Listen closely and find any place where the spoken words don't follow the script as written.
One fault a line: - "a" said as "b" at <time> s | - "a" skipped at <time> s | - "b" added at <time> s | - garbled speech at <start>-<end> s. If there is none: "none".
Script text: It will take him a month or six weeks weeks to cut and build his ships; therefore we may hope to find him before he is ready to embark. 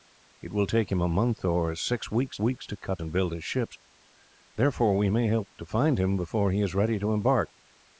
none